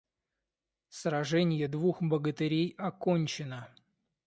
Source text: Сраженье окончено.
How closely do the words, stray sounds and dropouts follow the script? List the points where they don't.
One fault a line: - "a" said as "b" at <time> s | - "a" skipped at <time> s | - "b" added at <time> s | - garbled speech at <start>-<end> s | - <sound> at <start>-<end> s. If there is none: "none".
- "двух богатырей" added at 1.6 s